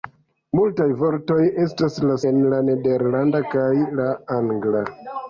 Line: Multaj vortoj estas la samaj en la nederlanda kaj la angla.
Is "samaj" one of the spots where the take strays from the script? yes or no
yes